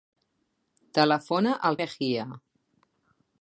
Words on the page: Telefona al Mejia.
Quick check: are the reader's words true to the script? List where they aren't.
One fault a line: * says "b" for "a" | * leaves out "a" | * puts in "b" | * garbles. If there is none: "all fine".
all fine